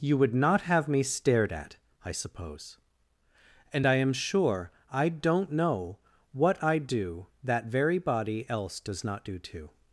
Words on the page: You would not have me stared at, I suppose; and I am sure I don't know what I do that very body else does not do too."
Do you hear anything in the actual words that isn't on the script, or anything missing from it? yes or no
no